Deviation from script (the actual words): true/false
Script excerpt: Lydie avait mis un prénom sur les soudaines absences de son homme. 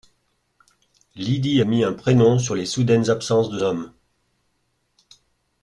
true